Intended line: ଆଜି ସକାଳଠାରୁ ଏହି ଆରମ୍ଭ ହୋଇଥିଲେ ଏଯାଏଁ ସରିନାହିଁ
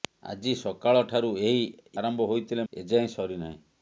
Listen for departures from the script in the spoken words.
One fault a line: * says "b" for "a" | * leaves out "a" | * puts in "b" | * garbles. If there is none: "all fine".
all fine